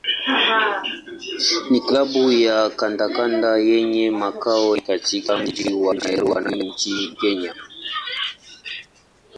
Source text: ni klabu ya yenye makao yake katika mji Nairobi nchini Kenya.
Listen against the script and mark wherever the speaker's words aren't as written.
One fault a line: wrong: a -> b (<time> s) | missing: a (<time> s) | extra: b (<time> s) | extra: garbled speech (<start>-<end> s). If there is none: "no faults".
extra: kandanda (2.7 s)
extra: wa (5.7 s)